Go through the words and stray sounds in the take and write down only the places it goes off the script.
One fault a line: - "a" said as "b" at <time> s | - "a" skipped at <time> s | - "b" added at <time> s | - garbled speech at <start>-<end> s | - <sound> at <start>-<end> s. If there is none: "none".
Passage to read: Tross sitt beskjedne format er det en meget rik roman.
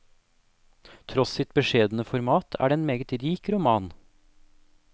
none